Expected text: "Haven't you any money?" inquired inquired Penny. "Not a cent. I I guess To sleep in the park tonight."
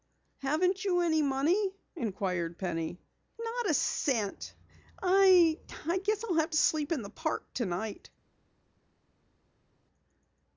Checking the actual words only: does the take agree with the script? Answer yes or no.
no